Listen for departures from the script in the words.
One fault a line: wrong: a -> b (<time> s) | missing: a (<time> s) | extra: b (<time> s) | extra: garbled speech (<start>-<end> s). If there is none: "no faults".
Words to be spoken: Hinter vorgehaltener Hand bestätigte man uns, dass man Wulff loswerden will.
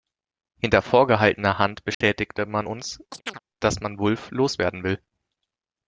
no faults